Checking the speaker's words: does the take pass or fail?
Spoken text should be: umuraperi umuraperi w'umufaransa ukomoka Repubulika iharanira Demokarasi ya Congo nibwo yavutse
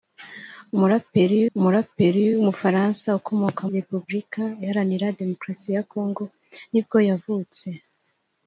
pass